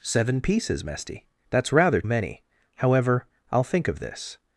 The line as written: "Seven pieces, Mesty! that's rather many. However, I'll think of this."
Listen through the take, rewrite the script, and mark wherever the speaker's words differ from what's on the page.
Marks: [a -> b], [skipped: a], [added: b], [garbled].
"Seven pieces, Mesty! that's rather many. However, I'll think of this."